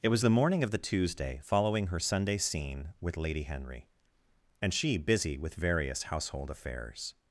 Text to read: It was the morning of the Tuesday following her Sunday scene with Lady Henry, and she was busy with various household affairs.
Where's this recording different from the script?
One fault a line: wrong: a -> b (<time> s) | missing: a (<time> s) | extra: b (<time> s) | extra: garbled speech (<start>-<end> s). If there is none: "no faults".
missing: was (5.0 s)